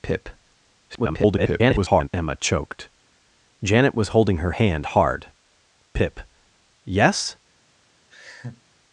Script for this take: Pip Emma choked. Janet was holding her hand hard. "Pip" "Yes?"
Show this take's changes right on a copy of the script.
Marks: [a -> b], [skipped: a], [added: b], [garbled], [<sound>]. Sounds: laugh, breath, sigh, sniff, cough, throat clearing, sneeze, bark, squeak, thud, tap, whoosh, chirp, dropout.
Pip [garbled] Emma choked. Janet was holding her hand hard. "Pip" "Yes?" [laugh]